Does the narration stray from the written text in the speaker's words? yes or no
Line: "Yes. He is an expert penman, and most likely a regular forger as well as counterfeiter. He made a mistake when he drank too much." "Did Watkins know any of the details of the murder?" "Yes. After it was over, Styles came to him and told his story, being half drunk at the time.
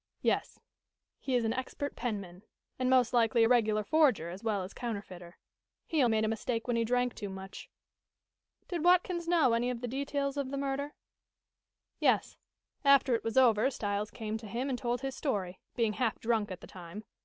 no